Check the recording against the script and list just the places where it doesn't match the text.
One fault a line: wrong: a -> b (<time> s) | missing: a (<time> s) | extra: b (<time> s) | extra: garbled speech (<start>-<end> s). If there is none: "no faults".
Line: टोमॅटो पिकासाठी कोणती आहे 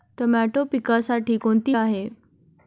no faults